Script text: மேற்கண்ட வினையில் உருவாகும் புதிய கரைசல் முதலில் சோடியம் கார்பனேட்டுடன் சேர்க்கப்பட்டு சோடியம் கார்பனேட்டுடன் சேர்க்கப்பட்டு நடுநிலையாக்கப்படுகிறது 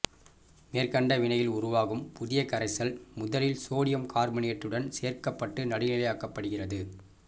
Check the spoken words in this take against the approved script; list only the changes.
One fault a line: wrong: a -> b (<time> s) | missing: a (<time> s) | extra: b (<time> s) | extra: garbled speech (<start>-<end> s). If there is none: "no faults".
missing: சோடியம் கார்பனேட்டுடன் சேர்க்கப்பட்டு (5.7 s)